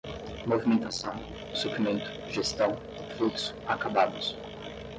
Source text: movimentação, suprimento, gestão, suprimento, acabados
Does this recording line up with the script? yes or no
no